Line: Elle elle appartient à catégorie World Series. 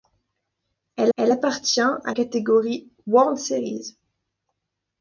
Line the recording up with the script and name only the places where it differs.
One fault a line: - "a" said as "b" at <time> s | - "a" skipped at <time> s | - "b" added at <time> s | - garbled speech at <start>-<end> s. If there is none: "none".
none